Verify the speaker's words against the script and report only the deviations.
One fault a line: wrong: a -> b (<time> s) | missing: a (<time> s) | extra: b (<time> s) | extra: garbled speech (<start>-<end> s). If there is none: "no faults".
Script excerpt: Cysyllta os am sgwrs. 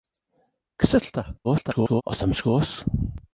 extra: garbled speech (1.4-2.0 s)